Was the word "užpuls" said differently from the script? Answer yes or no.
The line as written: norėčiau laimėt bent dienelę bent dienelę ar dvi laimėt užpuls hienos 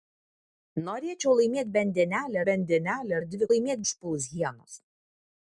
no